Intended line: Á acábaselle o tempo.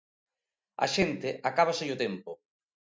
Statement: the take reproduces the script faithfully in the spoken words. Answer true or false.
false